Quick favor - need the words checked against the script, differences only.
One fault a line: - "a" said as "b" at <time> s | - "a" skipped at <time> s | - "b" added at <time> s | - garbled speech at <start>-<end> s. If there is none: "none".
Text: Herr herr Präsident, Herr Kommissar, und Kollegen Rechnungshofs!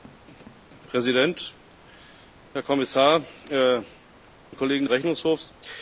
none